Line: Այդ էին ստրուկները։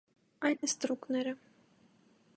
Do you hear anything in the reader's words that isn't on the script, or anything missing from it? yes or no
no